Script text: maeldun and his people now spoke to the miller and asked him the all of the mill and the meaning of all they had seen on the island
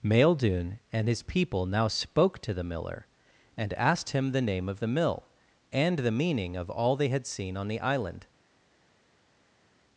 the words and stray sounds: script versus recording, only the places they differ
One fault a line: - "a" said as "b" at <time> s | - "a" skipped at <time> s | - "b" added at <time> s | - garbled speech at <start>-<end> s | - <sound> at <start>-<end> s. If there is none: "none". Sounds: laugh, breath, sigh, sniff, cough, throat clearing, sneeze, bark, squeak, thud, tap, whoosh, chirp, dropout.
- "all" said as "name" at 4.4 s